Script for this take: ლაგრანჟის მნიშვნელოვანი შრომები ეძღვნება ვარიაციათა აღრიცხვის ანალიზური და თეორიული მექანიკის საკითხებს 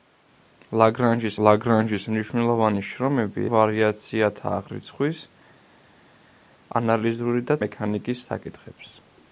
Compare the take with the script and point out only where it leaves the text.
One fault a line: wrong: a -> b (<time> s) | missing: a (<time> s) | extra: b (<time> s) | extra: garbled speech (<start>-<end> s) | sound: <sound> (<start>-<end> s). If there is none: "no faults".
extra: ლაგრანჟის (1.5 s)
missing: ეძღვნება (3.4 s)
missing: თეორიული (7.6 s)